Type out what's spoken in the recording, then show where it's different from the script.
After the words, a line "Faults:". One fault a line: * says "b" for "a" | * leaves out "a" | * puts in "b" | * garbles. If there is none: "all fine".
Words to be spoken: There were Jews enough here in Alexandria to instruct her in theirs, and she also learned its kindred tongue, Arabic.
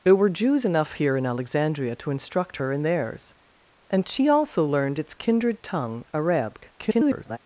There were Jews enough here in Alexandria to instruct her in theirs, and she also learned its kindred tongue, Arabic. [garbled]
Faults:
* garbles